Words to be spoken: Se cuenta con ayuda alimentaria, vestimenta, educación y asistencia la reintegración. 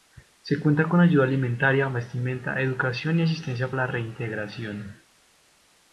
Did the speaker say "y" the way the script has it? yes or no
yes